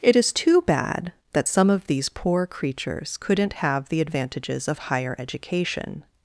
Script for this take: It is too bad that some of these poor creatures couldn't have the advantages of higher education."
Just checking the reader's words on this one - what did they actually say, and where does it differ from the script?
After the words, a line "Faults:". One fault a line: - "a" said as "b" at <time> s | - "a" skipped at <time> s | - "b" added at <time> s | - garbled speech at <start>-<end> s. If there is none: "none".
It is too bad that some of these poor creatures couldn't have the advantages of higher education."
Faults:
none